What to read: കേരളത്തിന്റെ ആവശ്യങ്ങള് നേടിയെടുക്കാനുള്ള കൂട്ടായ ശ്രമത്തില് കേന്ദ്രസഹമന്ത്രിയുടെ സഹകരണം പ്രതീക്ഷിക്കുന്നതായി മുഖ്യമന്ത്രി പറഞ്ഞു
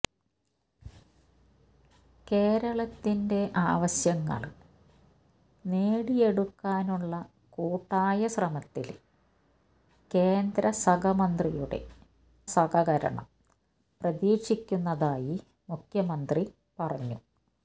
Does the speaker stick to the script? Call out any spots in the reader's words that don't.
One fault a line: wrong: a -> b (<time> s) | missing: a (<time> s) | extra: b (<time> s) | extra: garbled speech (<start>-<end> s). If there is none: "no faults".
no faults